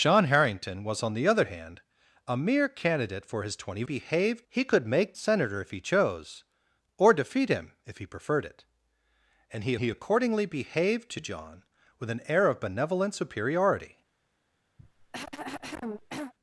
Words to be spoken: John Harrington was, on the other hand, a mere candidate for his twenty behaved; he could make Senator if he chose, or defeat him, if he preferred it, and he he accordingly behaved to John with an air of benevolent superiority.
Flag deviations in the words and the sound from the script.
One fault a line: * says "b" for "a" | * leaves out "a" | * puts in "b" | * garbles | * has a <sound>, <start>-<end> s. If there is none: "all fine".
* has a cough, 14.8-16.3 s